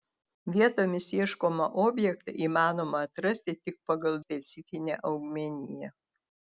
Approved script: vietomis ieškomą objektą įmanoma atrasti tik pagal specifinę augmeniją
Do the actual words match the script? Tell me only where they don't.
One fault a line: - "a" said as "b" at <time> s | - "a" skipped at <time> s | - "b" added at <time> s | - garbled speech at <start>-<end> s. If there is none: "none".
none